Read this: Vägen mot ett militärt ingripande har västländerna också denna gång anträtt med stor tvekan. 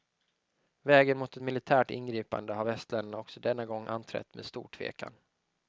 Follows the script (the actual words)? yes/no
yes